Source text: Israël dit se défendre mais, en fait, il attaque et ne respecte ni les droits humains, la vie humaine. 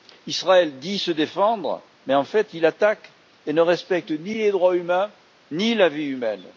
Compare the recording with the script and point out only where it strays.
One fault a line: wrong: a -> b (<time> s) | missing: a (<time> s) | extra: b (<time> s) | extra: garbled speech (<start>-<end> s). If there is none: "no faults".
extra: ni (5.5 s)